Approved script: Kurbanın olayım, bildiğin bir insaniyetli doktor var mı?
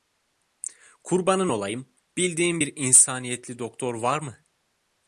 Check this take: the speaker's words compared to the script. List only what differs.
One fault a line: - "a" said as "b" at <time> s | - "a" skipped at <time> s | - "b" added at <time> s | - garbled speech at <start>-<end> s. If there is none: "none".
none